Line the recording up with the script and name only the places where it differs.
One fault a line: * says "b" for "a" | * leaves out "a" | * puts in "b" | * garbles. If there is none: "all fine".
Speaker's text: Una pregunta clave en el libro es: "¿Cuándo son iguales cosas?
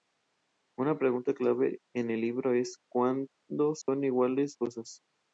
all fine